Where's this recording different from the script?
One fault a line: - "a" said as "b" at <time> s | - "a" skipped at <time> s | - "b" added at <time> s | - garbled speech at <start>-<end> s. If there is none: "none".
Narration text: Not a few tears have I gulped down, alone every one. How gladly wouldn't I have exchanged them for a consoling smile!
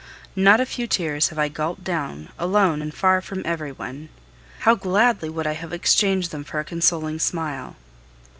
- "and far from" added at 2.8 s
- "wouldn't" said as "would" at 5.3 s